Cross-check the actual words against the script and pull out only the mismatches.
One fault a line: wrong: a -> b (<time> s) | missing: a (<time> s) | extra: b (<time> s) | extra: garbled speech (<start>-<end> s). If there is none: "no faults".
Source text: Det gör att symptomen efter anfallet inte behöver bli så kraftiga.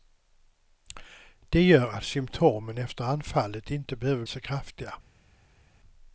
missing: bli (4.2 s)